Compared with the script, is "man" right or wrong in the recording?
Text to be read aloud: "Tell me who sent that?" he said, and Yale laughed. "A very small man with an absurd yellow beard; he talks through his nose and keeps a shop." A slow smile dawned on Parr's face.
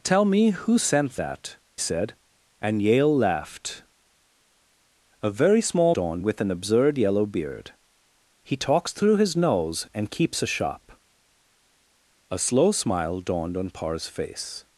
wrong